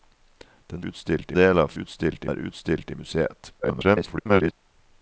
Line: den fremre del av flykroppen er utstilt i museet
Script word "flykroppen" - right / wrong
wrong